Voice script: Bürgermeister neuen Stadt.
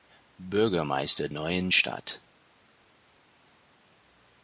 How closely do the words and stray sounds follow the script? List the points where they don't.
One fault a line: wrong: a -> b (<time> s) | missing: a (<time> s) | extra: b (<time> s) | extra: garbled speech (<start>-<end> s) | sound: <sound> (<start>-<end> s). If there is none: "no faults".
no faults